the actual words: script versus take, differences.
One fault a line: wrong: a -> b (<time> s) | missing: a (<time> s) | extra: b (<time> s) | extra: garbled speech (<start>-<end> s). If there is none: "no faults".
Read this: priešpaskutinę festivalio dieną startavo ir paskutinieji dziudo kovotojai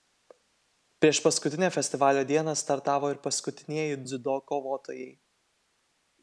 no faults